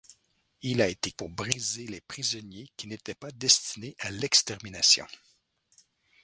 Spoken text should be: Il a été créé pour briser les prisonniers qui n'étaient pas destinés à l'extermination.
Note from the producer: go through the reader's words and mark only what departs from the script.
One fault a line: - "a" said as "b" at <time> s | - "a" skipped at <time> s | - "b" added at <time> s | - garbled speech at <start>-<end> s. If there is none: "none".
- "créé" skipped at 1.1 s